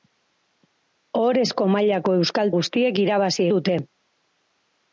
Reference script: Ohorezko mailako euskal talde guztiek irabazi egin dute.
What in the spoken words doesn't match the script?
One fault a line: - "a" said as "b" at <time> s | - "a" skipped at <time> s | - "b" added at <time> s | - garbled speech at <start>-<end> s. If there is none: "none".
- "talde" skipped at 2.5 s
- "egin" skipped at 3.5 s